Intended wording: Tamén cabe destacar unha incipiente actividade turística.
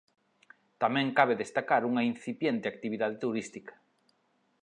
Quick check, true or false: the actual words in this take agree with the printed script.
true